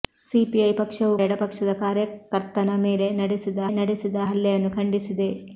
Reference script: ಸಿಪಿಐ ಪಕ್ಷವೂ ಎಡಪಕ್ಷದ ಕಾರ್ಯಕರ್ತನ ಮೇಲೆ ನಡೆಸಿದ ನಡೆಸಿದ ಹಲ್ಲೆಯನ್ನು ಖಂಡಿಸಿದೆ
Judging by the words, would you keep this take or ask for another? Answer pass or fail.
pass